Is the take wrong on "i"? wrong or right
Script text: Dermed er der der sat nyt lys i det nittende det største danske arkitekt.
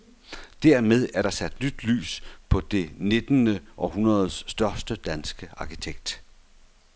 wrong